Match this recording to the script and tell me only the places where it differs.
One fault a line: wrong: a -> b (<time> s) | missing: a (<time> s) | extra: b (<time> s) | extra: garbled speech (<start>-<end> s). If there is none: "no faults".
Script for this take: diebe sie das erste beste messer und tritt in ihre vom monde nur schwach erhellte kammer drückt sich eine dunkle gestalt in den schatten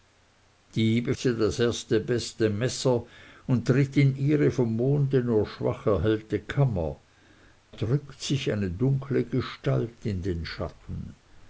no faults